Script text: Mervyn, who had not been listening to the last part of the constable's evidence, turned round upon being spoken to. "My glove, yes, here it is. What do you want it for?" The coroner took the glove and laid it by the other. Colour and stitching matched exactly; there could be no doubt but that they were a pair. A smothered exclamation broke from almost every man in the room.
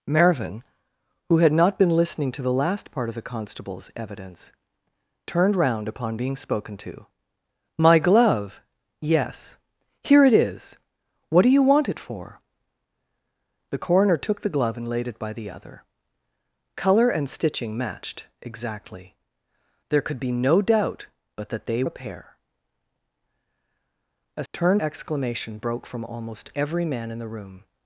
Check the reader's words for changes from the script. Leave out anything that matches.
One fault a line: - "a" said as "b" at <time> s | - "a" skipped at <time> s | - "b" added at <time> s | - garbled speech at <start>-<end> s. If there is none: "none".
- "were" skipped at 21.8 s
- "smothered" said as "turned" at 24.5 s